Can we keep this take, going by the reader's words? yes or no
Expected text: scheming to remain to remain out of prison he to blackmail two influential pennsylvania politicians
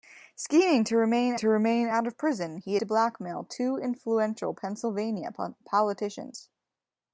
yes